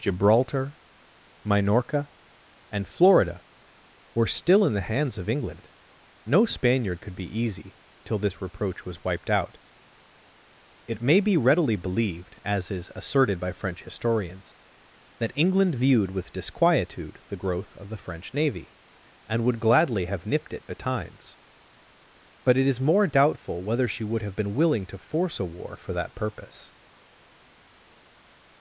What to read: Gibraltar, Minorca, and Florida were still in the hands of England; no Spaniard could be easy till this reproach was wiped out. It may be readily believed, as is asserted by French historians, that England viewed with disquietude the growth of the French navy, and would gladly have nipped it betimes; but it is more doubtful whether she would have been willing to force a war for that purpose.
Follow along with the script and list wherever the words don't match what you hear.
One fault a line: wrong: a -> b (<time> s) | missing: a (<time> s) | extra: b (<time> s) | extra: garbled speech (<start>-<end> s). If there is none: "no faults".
no faults